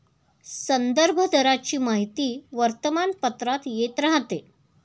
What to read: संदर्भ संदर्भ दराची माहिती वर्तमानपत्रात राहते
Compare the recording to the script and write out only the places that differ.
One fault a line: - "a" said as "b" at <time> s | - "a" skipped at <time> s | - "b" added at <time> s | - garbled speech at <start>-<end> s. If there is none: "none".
- "संदर्भ" skipped at 1.2 s
- "येत" added at 3.7 s